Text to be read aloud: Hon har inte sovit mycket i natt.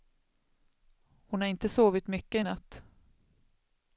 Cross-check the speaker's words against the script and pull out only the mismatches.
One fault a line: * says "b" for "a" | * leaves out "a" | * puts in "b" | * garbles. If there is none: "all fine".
all fine